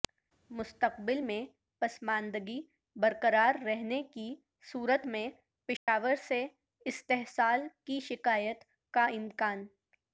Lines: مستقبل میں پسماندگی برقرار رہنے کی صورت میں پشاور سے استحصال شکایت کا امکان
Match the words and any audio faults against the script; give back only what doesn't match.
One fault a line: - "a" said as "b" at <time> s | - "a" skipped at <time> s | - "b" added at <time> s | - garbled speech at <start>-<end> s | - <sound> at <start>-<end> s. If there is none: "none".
- dropout at 5.8-5.9 s
- "کی" added at 7.9 s